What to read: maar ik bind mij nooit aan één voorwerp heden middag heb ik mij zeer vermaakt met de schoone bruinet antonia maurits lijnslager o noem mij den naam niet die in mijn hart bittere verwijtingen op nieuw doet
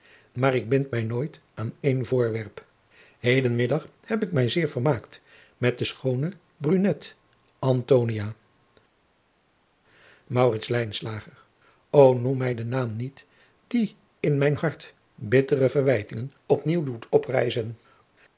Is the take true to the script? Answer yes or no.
yes